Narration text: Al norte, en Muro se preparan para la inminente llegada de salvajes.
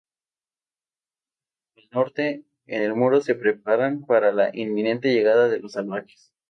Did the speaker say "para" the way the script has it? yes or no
yes